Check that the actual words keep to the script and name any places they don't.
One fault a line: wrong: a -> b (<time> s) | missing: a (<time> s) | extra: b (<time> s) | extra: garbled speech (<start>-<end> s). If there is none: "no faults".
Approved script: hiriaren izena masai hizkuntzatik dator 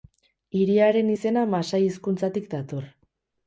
no faults